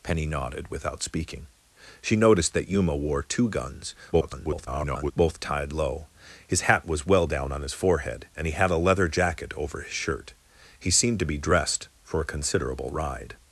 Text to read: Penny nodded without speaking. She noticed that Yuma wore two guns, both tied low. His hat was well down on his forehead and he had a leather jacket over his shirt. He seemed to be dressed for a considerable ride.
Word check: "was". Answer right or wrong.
right